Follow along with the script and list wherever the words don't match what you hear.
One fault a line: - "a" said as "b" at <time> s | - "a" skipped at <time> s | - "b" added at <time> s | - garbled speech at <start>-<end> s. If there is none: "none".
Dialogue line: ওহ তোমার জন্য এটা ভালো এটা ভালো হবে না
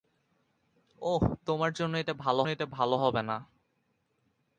none